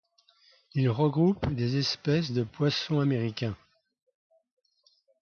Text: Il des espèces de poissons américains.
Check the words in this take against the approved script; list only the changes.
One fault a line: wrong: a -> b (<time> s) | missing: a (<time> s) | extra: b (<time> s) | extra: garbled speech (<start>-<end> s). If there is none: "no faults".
extra: regroupe (0.9 s)